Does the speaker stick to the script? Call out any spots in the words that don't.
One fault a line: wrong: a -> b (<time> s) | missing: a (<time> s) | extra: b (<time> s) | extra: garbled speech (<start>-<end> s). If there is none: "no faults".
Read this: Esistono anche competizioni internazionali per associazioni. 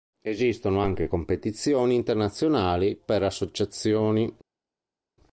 no faults